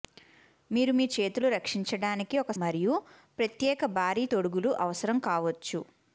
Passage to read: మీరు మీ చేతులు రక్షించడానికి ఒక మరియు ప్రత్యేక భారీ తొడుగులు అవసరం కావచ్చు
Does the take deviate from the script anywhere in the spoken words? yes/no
no